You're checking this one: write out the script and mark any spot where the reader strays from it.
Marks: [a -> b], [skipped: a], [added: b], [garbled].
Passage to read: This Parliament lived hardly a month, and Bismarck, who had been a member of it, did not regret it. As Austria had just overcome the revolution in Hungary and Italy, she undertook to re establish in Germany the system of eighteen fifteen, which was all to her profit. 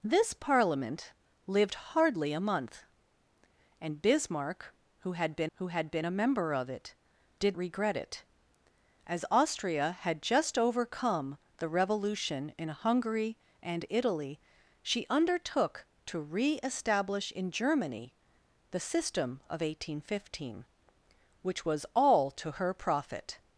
This Parliament lived hardly a month, and Bismarck, who had been [added: who had been] a member of it, did [skipped: not] regret it. As Austria had just overcome the revolution in Hungary and Italy, she undertook to re establish in Germany the system of eighteen fifteen, which was all to her profit.